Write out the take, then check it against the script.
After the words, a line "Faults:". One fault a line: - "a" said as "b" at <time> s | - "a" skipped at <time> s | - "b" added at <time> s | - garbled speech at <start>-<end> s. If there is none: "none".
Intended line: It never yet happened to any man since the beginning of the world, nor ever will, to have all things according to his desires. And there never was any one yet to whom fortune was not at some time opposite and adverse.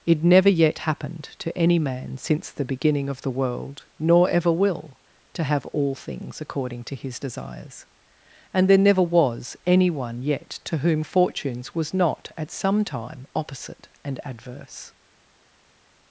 It never yet happened to any man since the beginning of the world, nor ever will, to have all things according to his desires. And there never was any one yet to whom fortunes was not at some time opposite and adverse.
Faults:
- "fortune" said as "fortunes" at 11.0 s